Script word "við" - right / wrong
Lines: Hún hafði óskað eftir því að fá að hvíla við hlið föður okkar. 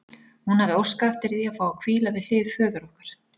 right